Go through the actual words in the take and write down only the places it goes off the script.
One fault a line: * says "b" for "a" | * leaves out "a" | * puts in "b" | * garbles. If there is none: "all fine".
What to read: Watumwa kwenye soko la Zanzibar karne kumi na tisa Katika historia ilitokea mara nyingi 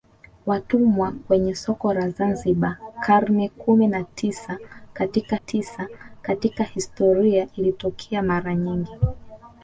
* puts in "tisa Katika"